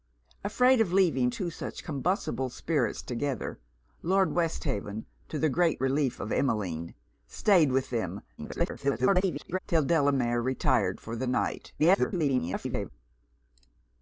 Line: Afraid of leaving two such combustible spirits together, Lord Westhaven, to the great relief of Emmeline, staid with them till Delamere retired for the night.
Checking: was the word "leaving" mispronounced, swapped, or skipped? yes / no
no